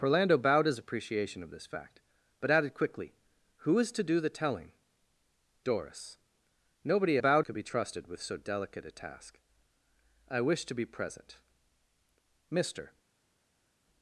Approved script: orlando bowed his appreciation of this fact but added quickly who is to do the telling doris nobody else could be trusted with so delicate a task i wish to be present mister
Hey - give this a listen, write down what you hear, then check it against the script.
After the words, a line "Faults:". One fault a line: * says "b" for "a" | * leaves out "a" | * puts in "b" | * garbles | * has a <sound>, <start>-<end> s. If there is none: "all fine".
orlando bowed his appreciation of this fact but added quickly who is to do the telling doris nobody bowed could be trusted with so delicate a task i wish to be present mister
Faults:
* says "bowed" for "else"